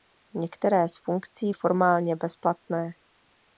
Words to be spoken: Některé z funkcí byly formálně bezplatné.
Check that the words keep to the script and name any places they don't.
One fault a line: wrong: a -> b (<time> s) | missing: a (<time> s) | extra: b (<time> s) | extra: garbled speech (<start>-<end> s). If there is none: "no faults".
missing: byly (1.5 s)